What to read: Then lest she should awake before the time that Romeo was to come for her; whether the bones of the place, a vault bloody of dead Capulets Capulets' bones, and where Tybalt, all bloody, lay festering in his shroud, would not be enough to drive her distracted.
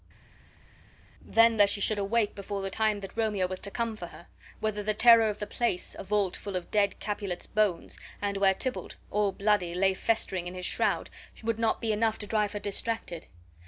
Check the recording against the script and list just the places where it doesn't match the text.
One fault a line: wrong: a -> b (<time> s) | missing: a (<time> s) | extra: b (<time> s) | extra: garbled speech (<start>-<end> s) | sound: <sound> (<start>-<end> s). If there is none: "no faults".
wrong: bones -> terror (4.9 s)
wrong: bloody -> full (6.4 s)
missing: Capulets (7.4 s)